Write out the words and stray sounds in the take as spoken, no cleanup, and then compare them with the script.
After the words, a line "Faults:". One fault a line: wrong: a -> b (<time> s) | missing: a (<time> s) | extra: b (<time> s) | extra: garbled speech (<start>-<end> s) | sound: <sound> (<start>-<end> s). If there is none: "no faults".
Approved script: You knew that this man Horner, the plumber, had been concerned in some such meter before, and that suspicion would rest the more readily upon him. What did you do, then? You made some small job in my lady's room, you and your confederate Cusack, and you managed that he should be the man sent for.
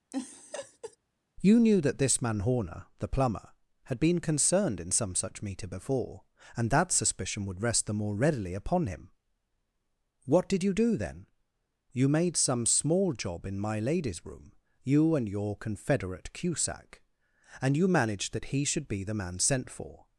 You knew that this man Horner, the plumber, had been concerned in some such meter before, and that suspicion would rest the more readily upon him. What did you do, then? You made some small job in my lady's room, you and your confederate Cusack, and you managed that he should be the man sent for.
Faults:
sound: laugh (0.1-1.0 s)